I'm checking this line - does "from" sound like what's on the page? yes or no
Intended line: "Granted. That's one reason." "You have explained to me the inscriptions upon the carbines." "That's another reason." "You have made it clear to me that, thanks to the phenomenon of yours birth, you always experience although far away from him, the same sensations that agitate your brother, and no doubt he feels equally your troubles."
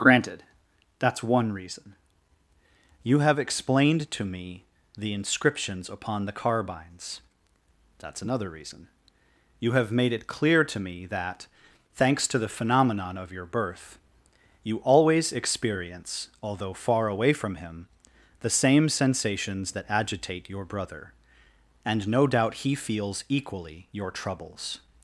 yes